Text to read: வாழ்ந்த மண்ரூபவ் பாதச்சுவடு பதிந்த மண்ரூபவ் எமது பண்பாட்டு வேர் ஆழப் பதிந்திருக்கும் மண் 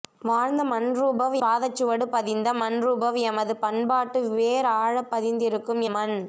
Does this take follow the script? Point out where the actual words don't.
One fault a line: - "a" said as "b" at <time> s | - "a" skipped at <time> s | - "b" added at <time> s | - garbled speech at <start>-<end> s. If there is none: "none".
none